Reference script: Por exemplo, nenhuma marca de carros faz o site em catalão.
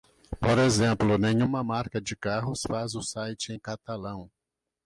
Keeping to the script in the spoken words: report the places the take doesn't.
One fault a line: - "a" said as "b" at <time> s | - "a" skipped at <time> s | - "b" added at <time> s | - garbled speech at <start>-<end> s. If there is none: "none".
none